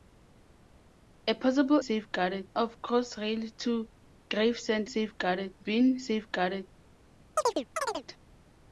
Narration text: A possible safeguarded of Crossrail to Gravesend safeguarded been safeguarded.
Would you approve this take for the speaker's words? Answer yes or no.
yes